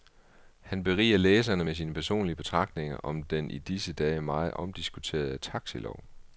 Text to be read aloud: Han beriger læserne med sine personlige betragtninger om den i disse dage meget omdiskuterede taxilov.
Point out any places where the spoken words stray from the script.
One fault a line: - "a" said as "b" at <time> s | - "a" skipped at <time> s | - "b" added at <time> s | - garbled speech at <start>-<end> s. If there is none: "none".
none